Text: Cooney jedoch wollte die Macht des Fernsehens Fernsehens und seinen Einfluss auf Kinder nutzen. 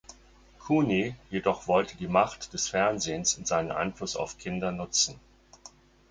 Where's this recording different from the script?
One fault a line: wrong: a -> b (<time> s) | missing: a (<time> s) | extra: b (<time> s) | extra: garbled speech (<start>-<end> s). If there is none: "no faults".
missing: Fernsehens (3.4 s)